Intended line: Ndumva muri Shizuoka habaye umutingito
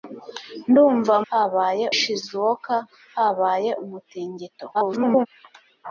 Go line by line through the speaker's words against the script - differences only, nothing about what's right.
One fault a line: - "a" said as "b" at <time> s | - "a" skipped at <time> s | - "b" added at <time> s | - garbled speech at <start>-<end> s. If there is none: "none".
- "muri" said as "habaye" at 1.3 s
- garbled speech at 4.7-5.3 s